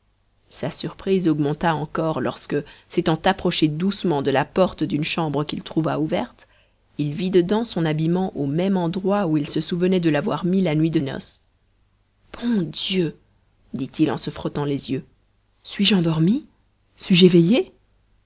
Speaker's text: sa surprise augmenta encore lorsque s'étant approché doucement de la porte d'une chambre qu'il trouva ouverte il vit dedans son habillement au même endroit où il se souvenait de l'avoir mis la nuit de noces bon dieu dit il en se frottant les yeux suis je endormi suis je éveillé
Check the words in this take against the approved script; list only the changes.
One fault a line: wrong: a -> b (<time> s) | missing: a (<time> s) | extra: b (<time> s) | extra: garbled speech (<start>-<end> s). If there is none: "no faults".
no faults